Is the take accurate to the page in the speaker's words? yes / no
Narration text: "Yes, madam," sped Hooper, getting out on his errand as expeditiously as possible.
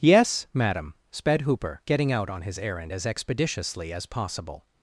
yes